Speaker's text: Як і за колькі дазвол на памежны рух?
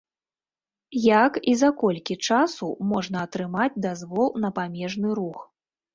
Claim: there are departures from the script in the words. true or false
true